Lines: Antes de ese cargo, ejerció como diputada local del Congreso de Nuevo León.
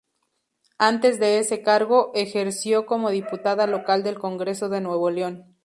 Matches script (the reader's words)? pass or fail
pass